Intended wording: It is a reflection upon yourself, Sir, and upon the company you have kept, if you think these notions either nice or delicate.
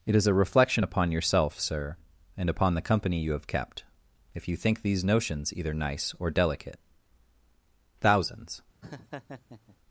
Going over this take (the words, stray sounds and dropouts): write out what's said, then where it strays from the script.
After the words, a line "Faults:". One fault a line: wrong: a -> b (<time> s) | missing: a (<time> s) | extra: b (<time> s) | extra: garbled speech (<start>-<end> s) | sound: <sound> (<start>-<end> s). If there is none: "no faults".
It is a reflection upon yourself, Sir, and upon the company you have kept, if you think these notions either nice or delicate. Thousands
Faults:
extra: Thousands (8.0 s)
sound: laugh (8.8-9.8 s)